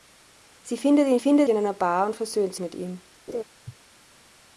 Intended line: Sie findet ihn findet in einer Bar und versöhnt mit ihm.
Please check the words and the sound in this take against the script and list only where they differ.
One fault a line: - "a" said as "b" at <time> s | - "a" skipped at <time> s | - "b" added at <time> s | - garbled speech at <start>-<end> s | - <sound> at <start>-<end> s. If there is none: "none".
- laugh at 3.3-3.4 s